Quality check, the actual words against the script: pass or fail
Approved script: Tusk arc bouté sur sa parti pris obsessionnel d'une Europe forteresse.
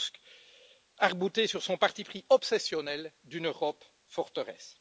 fail